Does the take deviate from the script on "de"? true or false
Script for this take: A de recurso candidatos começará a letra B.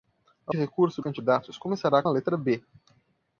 false